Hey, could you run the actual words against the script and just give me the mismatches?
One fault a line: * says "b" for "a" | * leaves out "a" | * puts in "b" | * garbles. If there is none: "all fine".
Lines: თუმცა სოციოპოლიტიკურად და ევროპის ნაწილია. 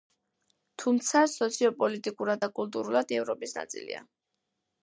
* puts in "კულტურულად"